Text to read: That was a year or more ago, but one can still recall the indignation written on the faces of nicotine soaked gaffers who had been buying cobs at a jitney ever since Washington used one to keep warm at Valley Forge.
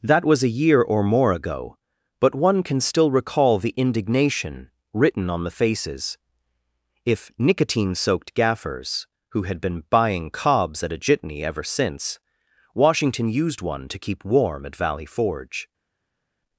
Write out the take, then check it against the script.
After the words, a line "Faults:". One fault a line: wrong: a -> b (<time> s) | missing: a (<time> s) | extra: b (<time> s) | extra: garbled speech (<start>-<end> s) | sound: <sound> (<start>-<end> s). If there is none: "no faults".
That was a year or more ago, but one can still recall the indignation written on the faces if nicotine soaked gaffers who had been buying cobs at a jitney ever since Washington used one to keep warm at Valley Forge.
Faults:
wrong: of -> if (7.0 s)